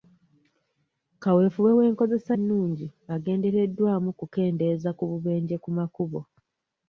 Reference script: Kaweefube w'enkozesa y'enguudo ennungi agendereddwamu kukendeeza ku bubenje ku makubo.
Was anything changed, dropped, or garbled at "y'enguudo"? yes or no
yes